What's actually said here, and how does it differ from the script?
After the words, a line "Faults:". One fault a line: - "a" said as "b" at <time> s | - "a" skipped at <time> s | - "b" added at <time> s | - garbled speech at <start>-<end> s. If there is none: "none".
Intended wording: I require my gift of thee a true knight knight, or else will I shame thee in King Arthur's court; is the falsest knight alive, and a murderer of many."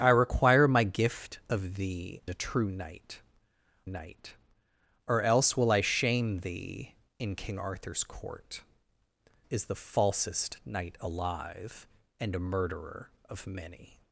I require my gift of thee a true knight knight, or else will I shame thee in King Arthur's court; is the falsest knight alive, and a murderer of many."
Faults:
none